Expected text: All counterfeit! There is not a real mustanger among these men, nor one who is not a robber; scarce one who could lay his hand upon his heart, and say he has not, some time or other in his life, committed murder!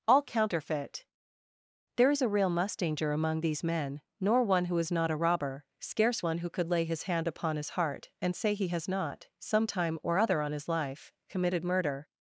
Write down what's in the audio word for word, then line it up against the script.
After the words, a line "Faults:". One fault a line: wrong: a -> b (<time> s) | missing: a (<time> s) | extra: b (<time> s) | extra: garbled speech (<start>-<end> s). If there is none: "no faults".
All counterfeit! There is a real mustanger among these men, nor one who is not a robber; scarce one who could lay his hand upon his heart, and say he has not, some time or other on his life, committed murder!
Faults:
missing: not (2.2 s)
wrong: in -> on (10.4 s)